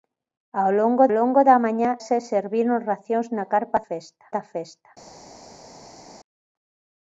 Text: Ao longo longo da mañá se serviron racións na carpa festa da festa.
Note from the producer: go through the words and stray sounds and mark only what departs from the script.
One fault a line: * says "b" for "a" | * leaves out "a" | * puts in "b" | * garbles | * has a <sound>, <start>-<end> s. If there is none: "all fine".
all fine